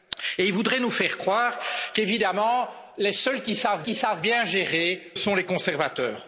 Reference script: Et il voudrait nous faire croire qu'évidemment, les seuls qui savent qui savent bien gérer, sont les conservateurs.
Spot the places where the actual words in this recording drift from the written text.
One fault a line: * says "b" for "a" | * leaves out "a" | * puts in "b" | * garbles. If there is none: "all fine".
all fine